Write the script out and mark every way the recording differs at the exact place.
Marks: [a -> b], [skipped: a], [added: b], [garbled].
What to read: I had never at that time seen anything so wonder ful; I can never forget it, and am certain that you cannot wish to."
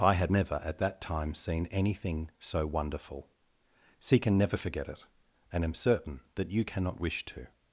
I had never at that time seen anything so [wonder ful; I -> wonderful see] can never forget it, and am certain that you cannot wish to."